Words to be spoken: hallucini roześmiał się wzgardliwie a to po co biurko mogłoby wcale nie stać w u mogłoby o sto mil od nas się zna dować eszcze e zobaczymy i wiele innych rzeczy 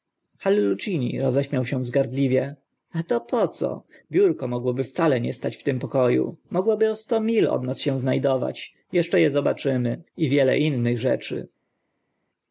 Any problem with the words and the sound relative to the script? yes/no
yes